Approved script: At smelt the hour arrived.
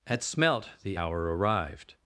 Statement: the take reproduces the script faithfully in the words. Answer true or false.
true